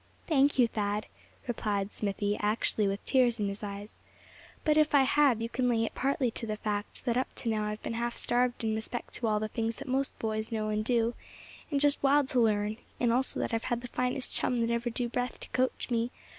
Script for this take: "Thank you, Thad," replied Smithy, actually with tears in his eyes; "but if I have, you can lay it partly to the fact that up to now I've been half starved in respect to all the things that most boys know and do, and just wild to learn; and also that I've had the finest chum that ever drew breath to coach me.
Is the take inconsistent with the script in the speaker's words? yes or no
no